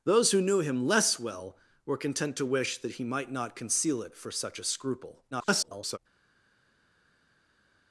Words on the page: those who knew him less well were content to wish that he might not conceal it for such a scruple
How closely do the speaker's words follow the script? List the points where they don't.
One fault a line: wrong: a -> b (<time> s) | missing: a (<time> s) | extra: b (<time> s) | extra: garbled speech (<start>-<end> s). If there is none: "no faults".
extra: garbled speech (5.3-6.0 s)